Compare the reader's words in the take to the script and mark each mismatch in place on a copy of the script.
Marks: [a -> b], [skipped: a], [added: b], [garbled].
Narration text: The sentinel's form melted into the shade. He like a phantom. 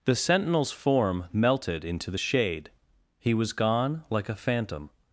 The sentinel's form melted into the shade. He [added: was gone] like a phantom.